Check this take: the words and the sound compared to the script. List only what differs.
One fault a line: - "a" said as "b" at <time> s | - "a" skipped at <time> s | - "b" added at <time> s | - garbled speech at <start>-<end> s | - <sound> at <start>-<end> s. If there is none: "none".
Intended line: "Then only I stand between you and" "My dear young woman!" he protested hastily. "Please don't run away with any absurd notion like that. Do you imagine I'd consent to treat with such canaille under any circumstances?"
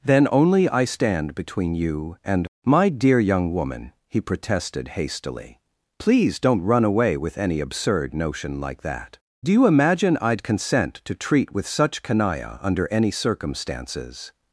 none